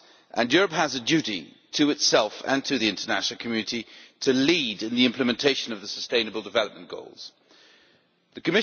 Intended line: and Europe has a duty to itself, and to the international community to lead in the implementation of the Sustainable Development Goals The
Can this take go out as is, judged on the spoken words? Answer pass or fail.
pass